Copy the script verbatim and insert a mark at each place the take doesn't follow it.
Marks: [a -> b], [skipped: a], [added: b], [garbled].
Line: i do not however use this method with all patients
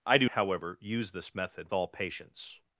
i do [skipped: not] however use this method [skipped: with] all patients